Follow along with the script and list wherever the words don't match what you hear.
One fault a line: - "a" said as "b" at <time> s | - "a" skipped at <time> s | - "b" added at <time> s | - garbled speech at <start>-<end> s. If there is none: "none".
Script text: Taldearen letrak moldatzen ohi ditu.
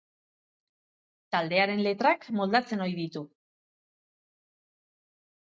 none